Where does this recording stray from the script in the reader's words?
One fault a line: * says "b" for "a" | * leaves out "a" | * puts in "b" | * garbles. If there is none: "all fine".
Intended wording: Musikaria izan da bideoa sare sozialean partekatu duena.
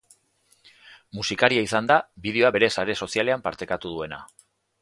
* puts in "bere"